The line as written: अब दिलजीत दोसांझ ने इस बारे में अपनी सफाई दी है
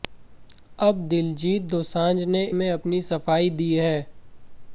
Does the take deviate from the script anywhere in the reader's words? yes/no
yes